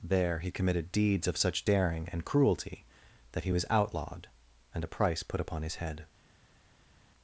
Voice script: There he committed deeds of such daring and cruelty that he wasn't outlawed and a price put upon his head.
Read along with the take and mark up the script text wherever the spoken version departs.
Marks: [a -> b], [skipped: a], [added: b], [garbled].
There he committed deeds of such daring and cruelty that he [wasn't -> was] outlawed and a price put upon his head.